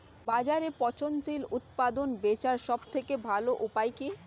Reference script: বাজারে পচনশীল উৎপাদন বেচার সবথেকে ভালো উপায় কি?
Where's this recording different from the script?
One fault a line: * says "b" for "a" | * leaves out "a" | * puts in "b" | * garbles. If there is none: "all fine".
all fine